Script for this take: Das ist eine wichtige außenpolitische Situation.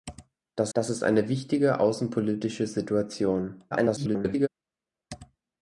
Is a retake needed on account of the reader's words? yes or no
yes